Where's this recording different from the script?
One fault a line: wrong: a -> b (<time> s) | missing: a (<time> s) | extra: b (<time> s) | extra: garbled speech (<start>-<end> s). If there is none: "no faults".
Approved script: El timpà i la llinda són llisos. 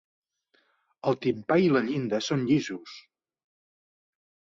no faults